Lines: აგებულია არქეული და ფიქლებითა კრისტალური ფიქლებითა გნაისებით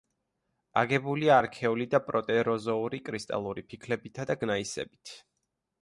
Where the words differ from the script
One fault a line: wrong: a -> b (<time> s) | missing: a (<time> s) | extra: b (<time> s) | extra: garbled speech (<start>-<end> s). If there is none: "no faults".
wrong: ფიქლებითა -> პროტეროზოური (2.1 s)
extra: და (4.3 s)